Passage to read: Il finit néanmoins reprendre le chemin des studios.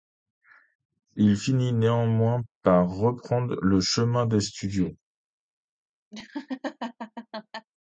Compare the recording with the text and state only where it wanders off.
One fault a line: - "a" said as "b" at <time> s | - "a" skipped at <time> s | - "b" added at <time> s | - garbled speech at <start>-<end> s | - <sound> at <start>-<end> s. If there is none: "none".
- "par" added at 2.6 s
- laugh at 6.1-7.7 s